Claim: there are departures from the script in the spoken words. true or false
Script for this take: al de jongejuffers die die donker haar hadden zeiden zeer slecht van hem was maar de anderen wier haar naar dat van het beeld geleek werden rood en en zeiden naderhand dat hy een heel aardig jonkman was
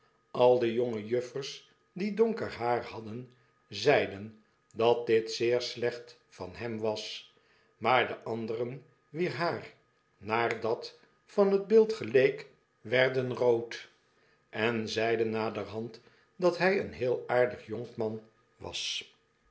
true